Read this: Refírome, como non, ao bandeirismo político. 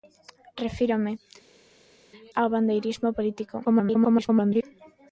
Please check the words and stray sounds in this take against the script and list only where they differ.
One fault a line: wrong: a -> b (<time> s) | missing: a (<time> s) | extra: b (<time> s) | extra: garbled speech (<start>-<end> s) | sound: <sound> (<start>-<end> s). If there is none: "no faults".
missing: como non (1.1 s)
extra: garbled speech (3.6-4.6 s)